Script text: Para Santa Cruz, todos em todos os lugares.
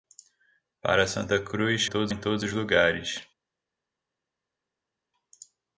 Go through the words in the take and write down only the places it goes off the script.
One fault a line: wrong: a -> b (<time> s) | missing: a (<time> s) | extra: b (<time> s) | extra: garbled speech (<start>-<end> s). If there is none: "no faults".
no faults